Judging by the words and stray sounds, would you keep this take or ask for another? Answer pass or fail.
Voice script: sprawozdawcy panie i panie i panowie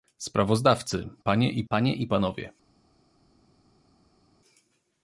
pass